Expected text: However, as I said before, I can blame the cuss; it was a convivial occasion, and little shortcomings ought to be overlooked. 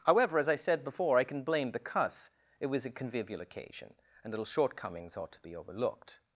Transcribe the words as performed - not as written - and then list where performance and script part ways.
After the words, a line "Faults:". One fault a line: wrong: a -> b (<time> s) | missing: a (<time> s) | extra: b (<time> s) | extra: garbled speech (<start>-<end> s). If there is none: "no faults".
However, as I said before, I can blame the cuss; it was a convivial occasion, and little shortcomings ought to be overlooked.
Faults:
no faults